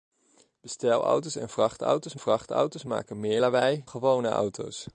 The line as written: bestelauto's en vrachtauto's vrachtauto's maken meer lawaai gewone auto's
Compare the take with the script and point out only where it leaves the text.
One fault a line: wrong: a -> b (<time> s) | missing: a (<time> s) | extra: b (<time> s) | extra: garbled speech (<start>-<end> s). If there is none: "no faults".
no faults